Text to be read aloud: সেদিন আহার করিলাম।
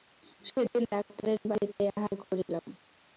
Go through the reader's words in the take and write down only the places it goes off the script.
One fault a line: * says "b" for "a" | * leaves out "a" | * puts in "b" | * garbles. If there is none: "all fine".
* puts in "ডাক্তারের বাড়িতেই"